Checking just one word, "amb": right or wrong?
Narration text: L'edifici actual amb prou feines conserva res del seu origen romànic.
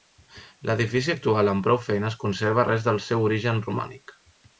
right